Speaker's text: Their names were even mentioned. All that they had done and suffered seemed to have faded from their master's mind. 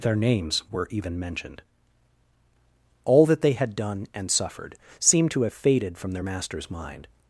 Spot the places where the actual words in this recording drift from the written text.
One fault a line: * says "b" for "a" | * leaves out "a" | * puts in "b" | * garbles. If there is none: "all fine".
all fine